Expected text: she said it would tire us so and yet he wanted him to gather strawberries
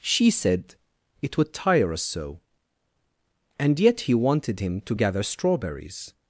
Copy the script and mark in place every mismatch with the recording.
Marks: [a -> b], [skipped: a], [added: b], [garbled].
she said it would tire us so and yet he wanted him to gather strawberries